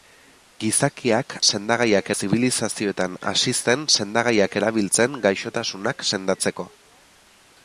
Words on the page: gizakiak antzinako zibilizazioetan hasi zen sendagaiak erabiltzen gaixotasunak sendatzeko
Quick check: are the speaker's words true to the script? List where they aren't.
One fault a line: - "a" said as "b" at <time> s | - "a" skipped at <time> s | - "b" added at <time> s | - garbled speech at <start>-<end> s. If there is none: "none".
- "antzinako" said as "sendagaiak" at 1.5 s